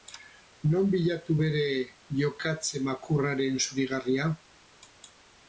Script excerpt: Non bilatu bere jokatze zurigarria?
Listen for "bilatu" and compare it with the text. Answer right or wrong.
right